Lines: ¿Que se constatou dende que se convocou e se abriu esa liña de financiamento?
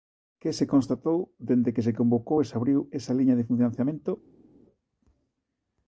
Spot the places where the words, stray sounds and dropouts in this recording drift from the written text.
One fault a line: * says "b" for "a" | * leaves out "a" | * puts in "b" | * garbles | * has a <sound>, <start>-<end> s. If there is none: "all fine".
all fine